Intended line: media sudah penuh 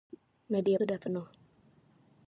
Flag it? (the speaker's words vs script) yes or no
no